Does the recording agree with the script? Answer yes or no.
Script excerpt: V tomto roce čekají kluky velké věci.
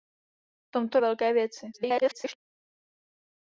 no